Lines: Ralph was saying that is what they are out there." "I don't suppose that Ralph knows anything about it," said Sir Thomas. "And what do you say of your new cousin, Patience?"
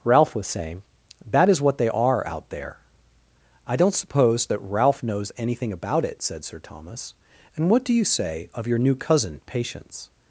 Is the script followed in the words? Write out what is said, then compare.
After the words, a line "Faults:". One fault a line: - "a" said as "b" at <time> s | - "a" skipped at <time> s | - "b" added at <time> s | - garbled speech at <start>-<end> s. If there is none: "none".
Ralph was saying that is what they are out there." "I don't suppose that Ralph knows anything about it," said Sir Thomas. "And what do you say of your new cousin, Patience?"
Faults:
none